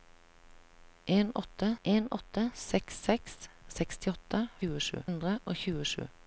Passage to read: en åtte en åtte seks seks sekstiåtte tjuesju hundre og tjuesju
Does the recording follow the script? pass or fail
pass